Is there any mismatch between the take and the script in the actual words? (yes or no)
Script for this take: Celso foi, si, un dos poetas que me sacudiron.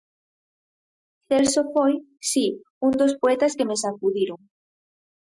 no